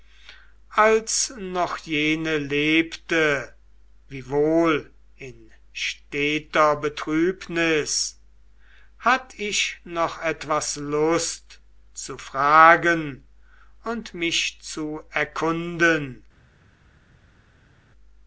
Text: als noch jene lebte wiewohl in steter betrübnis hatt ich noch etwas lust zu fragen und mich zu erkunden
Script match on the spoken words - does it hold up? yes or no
yes